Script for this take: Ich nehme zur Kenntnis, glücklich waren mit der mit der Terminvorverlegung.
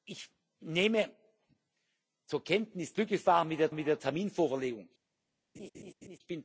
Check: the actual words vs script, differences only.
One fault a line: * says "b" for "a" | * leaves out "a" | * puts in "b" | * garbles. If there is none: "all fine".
all fine